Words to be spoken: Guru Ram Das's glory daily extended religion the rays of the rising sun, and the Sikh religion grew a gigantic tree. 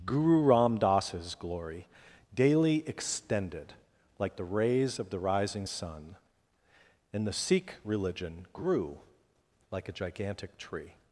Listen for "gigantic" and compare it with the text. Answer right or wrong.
right